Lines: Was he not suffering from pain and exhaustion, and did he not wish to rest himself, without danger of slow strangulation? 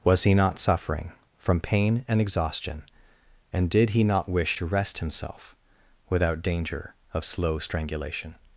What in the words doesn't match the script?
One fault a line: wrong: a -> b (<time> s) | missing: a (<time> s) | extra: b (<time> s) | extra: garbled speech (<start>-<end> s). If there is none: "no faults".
no faults